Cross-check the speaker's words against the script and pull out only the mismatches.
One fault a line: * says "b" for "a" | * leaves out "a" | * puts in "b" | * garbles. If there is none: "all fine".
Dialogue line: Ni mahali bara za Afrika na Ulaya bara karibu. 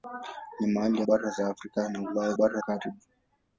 all fine